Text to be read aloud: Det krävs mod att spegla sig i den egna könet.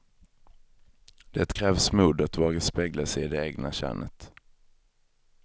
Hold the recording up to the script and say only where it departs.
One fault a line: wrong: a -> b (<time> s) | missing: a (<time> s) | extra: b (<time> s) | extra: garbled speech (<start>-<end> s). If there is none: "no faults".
extra: våga (2.4 s)
wrong: den -> det (3.3 s)